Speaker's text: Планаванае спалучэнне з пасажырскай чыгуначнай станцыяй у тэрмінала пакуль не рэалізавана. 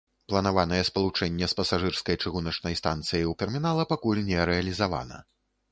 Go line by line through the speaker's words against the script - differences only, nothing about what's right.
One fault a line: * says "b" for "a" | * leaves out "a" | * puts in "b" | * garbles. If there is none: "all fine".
all fine